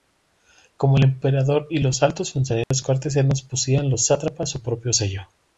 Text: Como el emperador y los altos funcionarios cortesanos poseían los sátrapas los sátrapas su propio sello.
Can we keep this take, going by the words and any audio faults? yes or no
no